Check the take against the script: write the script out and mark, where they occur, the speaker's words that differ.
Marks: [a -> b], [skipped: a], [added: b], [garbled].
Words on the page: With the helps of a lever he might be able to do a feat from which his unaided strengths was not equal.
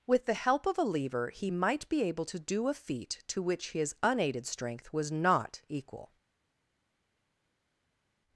With the [helps -> help] of a lever he might be able to do a feat [from -> to] which his unaided [strengths -> strength] was not equal.